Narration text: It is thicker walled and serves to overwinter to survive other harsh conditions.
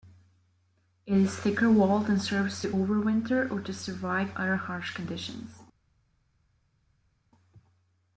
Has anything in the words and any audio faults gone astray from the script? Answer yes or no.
yes